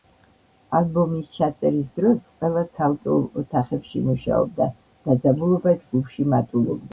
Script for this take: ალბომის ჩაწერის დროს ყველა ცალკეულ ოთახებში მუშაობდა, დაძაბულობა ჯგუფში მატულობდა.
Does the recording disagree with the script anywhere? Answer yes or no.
no